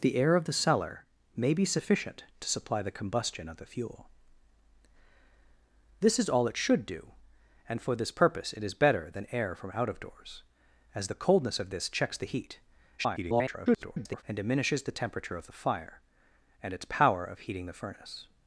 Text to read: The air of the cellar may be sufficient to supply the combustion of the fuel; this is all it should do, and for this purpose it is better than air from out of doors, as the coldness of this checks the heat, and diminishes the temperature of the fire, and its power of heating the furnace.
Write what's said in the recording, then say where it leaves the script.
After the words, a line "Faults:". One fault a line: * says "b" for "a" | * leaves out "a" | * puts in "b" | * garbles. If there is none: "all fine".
The air of the cellar may be sufficient to supply the combustion of the fuel; this is all it should do, and for this purpose it is better than air from out of doors, as the coldness of this checks the heat, [garbled] and diminishes the temperature of the fire, and its power of heating the furnace.
Faults:
* garbles